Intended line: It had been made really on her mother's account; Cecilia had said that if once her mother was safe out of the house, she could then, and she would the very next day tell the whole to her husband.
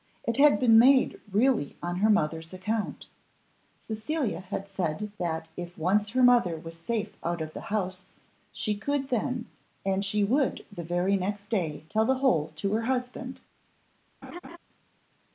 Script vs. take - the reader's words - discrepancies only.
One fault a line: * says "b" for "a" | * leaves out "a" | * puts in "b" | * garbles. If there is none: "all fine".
all fine